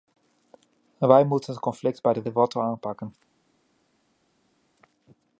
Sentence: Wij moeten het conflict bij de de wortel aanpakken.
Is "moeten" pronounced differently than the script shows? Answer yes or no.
no